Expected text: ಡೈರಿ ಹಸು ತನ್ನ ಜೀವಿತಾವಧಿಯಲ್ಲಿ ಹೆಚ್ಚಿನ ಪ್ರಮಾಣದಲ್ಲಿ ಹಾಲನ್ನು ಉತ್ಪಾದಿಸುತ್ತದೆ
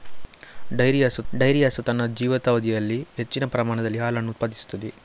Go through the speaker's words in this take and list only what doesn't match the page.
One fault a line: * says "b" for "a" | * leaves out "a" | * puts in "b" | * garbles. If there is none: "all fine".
* puts in "ಡೈರಿ ಹಸು"